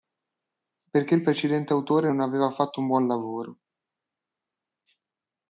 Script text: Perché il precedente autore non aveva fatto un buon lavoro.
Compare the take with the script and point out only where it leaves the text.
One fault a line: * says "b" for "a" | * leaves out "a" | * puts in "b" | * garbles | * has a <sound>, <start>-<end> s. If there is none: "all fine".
all fine